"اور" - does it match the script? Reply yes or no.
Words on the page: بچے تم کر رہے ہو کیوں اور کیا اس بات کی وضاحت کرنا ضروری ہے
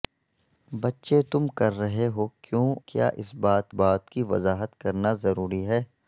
no